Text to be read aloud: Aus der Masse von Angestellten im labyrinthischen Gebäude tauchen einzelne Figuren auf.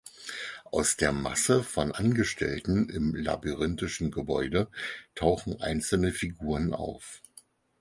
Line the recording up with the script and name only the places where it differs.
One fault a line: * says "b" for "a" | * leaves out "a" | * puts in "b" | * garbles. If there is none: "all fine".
all fine